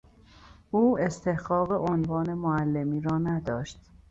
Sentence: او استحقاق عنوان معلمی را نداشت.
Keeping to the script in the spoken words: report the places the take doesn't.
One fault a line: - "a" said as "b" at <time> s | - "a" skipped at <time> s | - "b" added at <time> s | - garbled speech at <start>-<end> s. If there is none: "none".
none